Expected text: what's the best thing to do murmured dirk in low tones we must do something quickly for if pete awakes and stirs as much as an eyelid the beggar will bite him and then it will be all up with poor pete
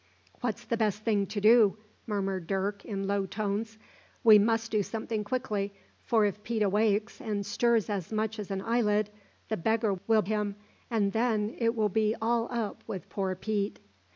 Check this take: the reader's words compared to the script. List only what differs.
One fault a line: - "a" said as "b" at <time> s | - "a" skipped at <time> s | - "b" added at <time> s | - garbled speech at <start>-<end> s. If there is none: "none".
- "bite" skipped at 10.2 s